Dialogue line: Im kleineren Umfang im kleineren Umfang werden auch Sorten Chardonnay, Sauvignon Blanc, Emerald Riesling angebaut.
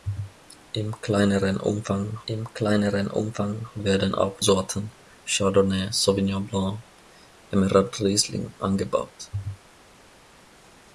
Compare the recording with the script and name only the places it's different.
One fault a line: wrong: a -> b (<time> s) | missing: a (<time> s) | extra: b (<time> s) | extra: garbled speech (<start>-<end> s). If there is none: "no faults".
no faults